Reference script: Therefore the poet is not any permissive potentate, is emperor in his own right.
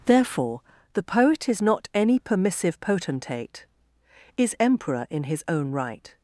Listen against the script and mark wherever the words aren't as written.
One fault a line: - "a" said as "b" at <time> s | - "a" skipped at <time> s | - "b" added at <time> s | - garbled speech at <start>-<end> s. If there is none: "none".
none